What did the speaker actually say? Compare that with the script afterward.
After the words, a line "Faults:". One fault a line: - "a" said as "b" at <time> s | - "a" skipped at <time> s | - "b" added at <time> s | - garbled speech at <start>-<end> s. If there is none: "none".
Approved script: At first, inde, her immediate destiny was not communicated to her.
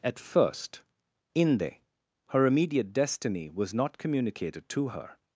At first, inde, her immediate destiny was not communicated to her.
Faults:
none